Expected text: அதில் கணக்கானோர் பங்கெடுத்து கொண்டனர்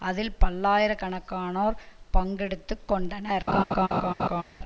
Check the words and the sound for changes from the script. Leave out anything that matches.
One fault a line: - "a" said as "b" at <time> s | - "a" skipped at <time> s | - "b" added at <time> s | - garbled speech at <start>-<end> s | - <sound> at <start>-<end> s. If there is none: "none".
- "பல்லாயிர" added at 0.4 s
- laugh at 3.5-4.4 s